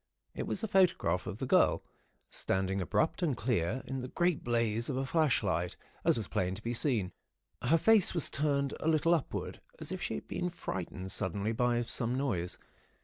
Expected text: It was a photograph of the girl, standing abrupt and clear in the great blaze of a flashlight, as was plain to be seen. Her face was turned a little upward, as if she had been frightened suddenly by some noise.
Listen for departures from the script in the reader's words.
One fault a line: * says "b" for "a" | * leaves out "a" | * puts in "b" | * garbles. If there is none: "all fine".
all fine